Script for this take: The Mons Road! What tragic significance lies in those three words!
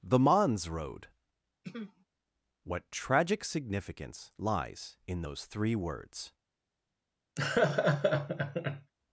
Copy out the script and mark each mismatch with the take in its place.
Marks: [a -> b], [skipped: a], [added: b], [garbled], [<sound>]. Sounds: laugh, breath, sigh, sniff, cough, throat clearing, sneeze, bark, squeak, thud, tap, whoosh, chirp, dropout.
The Mons Road! [throat clearing] What tragic significance lies in those three words! [laugh]